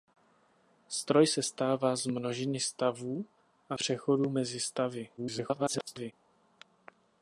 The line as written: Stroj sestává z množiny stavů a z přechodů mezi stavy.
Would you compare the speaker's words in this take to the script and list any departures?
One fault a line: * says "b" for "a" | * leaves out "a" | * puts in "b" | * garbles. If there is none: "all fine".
* leaves out "z"
* garbles